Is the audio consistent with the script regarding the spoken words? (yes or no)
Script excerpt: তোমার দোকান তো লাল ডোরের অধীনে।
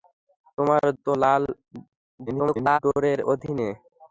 no